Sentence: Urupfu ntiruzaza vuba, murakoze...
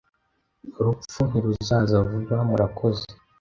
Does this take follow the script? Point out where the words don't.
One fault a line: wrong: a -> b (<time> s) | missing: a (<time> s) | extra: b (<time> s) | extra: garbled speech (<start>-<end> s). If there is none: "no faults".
no faults